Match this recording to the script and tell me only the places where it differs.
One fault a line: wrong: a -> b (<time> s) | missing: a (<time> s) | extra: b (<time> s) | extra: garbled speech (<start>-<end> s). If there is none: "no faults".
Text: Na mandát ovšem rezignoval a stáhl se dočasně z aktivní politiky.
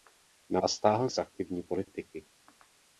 missing: mandát ovšem rezignoval (0.6 s)
missing: se dočasně (1.1 s)